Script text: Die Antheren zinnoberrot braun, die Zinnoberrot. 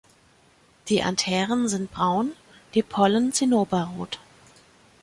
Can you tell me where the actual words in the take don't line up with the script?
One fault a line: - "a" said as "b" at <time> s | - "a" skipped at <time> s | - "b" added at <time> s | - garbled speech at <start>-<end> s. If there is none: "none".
- "zinnoberrot" said as "sind" at 1.7 s
- "Pollen" added at 2.8 s